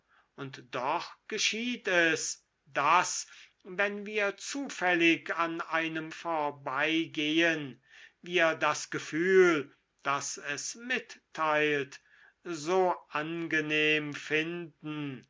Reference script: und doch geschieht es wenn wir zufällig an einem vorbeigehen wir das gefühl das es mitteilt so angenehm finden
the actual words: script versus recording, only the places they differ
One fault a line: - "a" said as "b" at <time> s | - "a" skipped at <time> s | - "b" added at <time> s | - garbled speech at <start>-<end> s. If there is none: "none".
- "daß" added at 2.7 s